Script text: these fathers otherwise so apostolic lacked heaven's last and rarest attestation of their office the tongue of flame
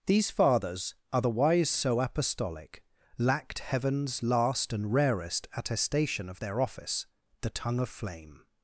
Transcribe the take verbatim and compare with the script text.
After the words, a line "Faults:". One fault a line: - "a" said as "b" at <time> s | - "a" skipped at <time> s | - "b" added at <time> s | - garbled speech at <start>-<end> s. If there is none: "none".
these fathers otherwise so apostolic lacked heaven's last and rarest attestation of their office the tongue of flame
Faults:
none